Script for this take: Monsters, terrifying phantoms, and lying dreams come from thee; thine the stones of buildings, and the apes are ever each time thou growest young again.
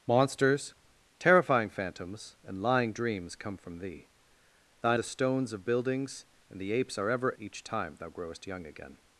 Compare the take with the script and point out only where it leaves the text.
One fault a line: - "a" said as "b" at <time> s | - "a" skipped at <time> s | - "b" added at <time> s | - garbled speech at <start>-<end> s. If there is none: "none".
none